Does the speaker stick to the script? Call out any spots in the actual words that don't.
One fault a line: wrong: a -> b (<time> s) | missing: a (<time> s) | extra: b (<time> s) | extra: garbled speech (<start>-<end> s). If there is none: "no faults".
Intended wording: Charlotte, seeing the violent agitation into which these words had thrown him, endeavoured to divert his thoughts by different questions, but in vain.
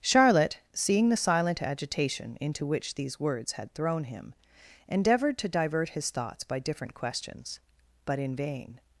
wrong: violent -> silent (1.2 s)